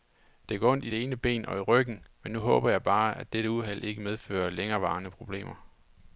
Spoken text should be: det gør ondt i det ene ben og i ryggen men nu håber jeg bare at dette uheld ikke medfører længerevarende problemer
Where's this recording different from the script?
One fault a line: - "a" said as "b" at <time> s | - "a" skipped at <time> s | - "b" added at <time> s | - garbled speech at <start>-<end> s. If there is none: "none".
none